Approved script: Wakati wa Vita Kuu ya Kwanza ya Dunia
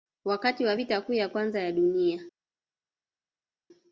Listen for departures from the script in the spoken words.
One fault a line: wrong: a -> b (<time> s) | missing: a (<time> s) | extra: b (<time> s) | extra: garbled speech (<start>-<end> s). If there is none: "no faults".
no faults